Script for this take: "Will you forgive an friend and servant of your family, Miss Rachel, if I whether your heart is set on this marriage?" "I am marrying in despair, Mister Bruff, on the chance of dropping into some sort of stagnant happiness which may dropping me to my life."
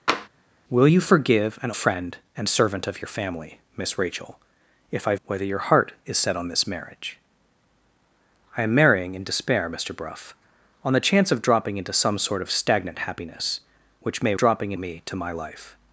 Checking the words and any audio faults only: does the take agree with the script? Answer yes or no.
no